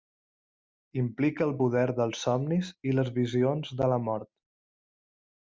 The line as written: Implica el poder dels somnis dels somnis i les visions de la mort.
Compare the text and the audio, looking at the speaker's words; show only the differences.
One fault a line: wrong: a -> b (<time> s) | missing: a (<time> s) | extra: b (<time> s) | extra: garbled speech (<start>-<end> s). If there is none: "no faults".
missing: dels somnis (2.7 s)